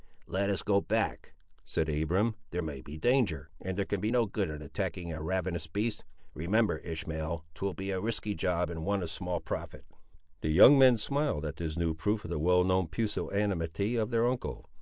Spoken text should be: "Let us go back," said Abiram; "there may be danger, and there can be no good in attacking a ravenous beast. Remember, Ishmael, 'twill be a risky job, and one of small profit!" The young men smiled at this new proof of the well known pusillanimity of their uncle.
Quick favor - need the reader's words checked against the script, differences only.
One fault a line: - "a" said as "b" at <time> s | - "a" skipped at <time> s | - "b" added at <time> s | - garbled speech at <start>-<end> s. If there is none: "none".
none